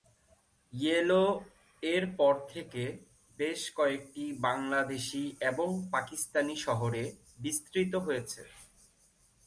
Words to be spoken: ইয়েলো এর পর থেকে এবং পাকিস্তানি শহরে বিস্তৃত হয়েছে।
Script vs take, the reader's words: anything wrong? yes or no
yes